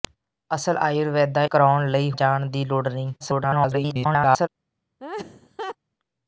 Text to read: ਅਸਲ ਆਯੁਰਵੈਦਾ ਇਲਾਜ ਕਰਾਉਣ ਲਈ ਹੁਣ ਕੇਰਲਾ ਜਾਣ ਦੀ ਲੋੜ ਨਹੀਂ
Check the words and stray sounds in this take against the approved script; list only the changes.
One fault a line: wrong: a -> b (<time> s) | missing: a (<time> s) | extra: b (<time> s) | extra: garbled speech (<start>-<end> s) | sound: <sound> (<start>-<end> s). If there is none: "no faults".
missing: ਇਲਾਜ (1.4 s)
missing: ਹੁਣ ਕੇਰਲਾ (2.1 s)
extra: garbled speech (3.2-4.5 s)
sound: laugh (5.0-5.8 s)